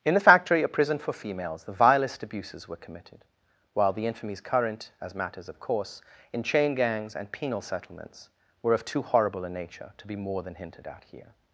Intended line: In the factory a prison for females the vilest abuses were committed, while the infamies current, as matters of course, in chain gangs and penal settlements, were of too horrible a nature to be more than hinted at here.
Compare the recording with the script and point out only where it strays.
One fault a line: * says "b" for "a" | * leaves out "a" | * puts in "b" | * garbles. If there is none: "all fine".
all fine